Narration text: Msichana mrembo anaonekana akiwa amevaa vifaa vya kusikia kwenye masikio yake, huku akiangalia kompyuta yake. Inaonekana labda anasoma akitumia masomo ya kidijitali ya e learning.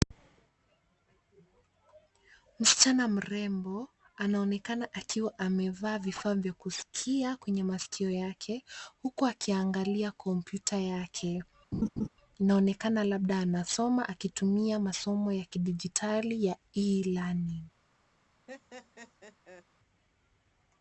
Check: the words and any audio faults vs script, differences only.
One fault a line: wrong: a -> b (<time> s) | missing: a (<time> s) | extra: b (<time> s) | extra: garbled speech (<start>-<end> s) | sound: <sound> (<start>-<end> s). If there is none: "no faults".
sound: laugh (11.7-12.1 s)
sound: laugh (18.5-19.7 s)